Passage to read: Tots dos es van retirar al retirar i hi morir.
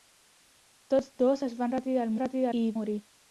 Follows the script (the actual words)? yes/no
yes